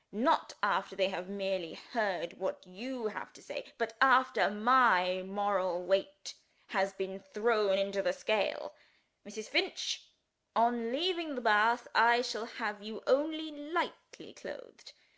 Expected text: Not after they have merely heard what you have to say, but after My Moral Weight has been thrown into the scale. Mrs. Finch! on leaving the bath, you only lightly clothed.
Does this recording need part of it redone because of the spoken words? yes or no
yes